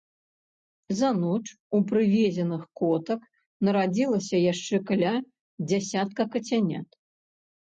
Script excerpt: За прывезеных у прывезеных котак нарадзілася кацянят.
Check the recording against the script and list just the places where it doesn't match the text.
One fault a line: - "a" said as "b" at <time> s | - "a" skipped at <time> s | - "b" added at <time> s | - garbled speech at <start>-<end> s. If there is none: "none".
- "прывезеных" said as "ноч" at 1.2 s
- "яшчэ каля дзясятка" added at 4.5 s